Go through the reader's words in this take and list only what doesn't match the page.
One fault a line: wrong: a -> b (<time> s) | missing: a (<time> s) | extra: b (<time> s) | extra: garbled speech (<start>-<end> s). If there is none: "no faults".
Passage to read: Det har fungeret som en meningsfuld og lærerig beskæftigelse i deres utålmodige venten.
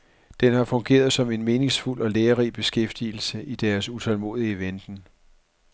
wrong: Det -> Den (0.4 s)